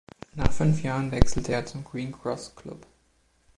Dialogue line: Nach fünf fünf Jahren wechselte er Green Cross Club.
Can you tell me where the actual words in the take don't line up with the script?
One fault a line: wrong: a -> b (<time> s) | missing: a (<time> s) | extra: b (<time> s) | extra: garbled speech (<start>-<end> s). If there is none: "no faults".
missing: fünf (0.8 s)
extra: zum (1.7 s)